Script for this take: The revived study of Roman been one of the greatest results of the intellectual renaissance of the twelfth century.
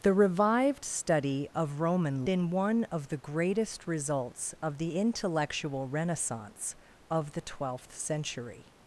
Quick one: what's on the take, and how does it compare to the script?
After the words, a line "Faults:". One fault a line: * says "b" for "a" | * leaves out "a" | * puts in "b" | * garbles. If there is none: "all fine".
The revived study of Roman been one of the greatest results of the intellectual renaissance of the twelfth century.
Faults:
all fine